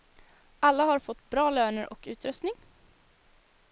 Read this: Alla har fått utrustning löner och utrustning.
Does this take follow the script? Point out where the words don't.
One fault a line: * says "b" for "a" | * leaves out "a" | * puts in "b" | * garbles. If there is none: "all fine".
* says "bra" for "utrustning"